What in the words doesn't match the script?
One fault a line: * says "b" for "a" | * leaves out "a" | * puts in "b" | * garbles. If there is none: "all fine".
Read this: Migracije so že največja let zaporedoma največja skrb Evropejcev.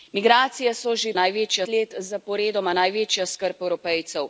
all fine